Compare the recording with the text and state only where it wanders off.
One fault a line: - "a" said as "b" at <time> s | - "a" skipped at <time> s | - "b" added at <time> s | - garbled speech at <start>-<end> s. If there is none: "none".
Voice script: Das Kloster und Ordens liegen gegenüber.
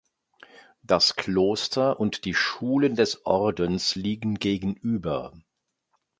- "die Schulen des" added at 2.2 s